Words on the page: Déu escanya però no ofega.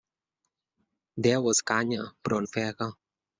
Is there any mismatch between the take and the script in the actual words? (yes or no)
yes